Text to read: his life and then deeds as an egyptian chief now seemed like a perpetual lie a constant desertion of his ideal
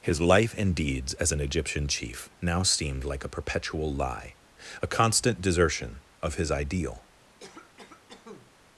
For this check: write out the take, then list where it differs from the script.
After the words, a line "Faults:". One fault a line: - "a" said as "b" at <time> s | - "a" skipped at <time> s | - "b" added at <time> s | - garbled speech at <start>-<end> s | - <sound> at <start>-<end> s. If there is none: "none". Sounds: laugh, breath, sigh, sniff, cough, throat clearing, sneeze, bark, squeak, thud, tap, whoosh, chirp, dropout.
his life and deeds as an egyptian chief now seemed like a perpetual lie a constant desertion of his ideal
Faults:
- "then" skipped at 0.8 s
- cough at 7.4-8.5 s